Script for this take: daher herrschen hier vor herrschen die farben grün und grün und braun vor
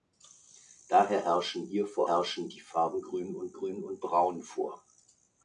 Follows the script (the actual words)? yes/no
yes